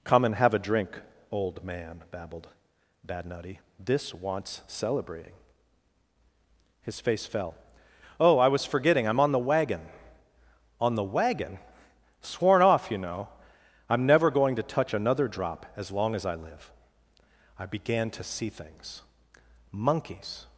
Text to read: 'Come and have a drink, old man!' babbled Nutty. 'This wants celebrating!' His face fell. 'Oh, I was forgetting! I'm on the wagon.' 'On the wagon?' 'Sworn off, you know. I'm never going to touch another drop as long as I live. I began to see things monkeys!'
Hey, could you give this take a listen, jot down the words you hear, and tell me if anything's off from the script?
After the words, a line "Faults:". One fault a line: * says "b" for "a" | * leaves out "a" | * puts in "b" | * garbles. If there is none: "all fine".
'Come and have a drink, old man!' babbled bad Nutty. 'This wants celebrating!' His face fell. 'Oh, I was forgetting! I'm on the wagon.' 'On the wagon?' 'Sworn off, you know. I'm never going to touch another drop as long as I live. I began to see things monkeys!'
Faults:
* puts in "bad"